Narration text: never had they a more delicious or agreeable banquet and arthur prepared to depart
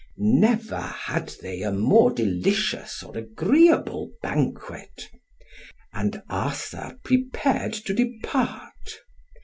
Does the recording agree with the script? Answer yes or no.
yes